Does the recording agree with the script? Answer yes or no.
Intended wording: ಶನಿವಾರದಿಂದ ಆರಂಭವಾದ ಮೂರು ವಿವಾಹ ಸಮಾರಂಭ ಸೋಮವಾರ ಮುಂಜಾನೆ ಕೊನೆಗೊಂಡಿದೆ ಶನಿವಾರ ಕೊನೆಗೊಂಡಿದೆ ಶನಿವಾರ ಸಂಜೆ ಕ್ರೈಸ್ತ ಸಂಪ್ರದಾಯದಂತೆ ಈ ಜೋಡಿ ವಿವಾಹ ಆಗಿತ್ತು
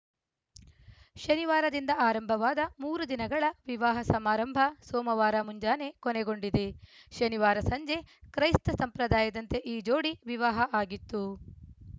no